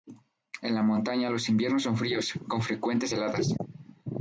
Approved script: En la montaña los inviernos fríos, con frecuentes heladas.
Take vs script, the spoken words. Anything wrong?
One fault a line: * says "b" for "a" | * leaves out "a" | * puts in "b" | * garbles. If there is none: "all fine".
* puts in "son"